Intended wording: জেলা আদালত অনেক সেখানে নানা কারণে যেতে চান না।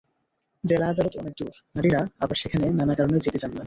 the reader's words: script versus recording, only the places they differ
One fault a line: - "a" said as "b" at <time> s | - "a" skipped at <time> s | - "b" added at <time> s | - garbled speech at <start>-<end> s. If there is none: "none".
- "দূর নারীরা আবার" added at 1.4 s